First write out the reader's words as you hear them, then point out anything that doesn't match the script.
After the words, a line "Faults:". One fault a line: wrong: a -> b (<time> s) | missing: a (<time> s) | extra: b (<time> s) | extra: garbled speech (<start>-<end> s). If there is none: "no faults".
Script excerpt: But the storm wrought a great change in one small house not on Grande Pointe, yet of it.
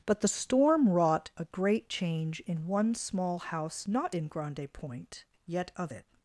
But the storm wrought a great change in one small house not in Grande Pointe, yet of it.
Faults:
wrong: on -> in (4.1 s)